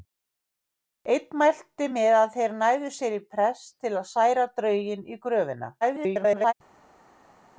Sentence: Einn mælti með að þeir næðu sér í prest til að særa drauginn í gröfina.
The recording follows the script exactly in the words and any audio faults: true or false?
false